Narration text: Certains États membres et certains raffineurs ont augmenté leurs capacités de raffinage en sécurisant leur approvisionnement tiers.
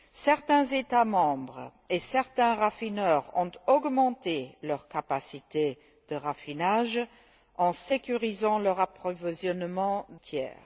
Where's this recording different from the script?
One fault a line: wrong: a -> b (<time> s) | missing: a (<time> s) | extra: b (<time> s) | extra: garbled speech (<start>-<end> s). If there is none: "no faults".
no faults